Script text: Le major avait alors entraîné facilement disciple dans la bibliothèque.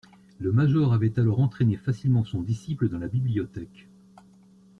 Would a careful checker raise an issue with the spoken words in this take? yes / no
yes